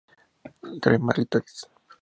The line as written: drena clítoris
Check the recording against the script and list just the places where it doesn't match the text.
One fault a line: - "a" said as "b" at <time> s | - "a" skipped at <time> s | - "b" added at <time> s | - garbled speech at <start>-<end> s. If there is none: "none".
none